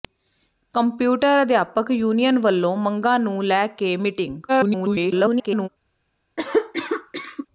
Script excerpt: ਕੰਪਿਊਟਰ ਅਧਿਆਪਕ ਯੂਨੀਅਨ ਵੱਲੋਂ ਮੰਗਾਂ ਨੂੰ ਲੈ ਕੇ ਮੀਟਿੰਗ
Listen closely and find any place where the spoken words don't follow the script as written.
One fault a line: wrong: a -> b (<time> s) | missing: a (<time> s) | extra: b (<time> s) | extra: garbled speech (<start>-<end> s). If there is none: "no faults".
extra: garbled speech (4.5-5.7 s)